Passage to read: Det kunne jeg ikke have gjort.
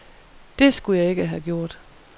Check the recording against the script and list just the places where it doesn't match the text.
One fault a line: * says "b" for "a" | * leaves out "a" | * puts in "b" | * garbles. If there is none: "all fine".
* says "skulle" for "kunne"